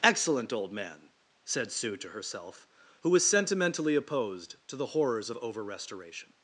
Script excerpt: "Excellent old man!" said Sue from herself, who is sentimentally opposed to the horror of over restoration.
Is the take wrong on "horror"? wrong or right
wrong